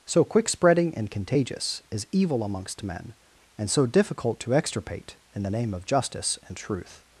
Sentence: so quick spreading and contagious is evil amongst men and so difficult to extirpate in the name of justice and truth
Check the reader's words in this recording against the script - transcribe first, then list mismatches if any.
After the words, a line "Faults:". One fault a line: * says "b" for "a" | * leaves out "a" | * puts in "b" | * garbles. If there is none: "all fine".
so quick spreading and contagious is evil amongst men and so difficult to extirpate in the name of justice and truth
Faults:
all fine